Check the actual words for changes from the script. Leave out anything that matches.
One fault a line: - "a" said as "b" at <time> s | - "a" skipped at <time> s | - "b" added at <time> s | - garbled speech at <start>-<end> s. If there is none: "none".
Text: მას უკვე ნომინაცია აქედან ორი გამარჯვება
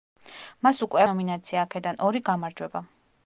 none